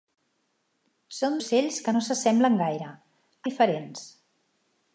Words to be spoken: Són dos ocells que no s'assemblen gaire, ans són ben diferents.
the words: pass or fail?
fail